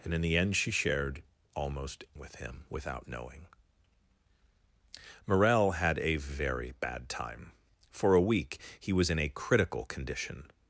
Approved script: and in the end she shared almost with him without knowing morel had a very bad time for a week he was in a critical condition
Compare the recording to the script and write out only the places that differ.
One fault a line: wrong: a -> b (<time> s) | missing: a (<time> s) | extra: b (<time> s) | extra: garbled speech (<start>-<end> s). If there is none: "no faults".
no faults